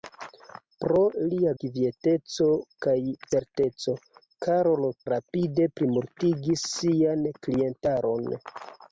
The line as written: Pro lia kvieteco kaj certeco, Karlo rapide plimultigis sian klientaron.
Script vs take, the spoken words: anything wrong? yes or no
no